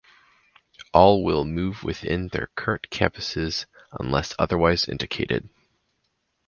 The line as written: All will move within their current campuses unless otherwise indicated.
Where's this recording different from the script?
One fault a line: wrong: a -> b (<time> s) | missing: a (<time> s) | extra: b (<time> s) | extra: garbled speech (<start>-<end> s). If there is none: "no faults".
no faults